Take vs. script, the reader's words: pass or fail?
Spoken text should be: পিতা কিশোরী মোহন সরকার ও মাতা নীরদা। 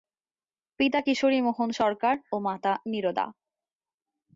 pass